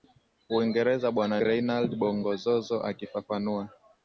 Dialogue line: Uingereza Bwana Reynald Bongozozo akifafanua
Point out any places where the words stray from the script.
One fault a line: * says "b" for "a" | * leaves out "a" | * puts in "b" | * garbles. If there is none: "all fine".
all fine